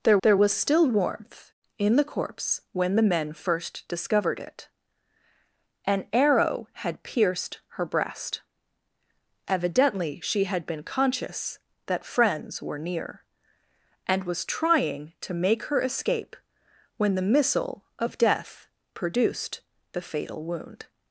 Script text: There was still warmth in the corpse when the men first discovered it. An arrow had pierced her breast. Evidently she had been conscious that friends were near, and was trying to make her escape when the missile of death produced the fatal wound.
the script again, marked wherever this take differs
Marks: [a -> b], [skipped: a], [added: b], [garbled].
There [added: there] was still warmth in the corpse when the men first discovered it. An arrow had pierced her breast. Evidently she had been conscious that friends were near, and was trying to make her escape when the missile of death produced the fatal wound.